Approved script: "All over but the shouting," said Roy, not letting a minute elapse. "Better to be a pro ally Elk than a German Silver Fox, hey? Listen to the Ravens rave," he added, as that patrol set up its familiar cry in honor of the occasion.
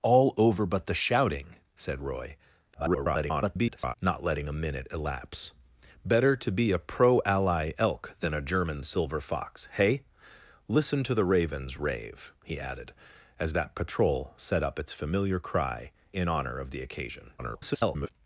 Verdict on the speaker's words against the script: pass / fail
fail